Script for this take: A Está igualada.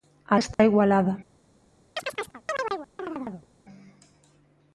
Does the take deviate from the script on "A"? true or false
false